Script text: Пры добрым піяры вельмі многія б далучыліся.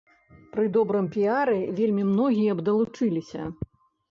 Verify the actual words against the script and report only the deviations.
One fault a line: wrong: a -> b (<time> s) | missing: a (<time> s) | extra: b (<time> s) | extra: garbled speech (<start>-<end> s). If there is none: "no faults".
no faults